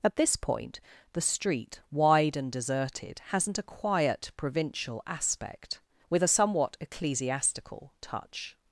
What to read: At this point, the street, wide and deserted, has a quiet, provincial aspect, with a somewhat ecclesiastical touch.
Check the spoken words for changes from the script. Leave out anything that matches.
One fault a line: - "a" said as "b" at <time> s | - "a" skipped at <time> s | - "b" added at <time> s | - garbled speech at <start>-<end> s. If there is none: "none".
- "has" said as "hasn't" at 3.3 s